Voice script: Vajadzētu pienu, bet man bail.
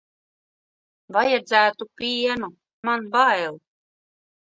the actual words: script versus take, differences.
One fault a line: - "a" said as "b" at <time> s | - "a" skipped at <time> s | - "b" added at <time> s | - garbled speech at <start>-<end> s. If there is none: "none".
- "bet" skipped at 2.5 s